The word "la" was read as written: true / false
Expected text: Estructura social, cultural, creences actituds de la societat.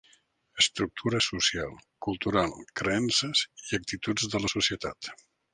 true